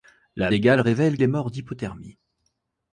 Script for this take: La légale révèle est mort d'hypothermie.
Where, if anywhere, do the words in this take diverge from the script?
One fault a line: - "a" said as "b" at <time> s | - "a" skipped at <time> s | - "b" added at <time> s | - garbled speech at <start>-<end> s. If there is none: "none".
none